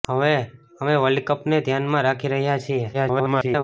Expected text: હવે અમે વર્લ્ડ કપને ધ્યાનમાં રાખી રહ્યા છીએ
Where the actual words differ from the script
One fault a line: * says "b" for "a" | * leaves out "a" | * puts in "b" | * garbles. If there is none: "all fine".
* garbles